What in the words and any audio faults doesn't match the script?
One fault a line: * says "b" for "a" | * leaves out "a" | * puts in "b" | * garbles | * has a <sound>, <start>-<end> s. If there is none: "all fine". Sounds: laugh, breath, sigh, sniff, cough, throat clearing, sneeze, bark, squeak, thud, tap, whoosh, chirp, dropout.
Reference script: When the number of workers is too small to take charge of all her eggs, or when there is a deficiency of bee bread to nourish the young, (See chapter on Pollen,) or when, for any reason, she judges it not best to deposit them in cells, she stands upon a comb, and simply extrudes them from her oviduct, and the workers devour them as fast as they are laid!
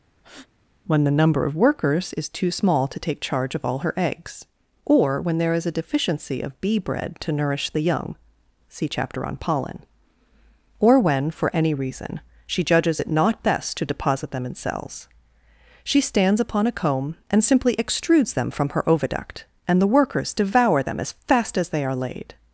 * has a breath, 0.2-0.5 s